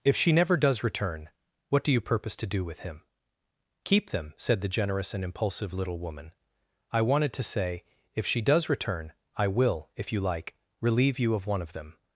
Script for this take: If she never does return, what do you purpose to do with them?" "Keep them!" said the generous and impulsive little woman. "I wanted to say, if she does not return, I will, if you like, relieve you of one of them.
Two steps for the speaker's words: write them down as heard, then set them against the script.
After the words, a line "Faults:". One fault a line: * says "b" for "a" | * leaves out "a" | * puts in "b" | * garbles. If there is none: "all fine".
If she never does return, what do you purpose to do with him?" "Keep them!" said the generous and impulsive little woman. "I wanted to say, if she does return, I will, if you like, relieve you of one of them.
Faults:
* says "him" for "them"
* leaves out "not"